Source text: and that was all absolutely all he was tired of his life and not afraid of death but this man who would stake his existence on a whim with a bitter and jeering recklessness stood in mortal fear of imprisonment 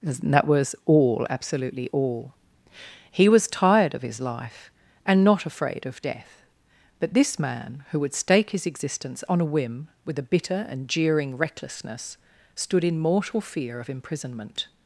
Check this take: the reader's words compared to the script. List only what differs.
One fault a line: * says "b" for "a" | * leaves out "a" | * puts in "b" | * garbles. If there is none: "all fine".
all fine